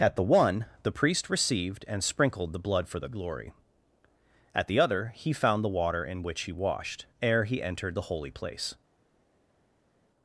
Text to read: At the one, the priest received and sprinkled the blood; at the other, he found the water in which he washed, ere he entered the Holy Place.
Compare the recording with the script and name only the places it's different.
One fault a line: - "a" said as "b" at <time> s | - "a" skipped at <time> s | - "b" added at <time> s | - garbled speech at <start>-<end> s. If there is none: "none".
- "for the glory" added at 2.9 s